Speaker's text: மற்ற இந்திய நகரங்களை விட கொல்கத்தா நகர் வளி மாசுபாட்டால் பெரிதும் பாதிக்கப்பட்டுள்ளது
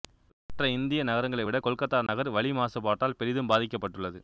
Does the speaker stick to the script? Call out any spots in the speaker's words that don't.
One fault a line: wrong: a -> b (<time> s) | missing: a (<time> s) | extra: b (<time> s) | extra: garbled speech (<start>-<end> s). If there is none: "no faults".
no faults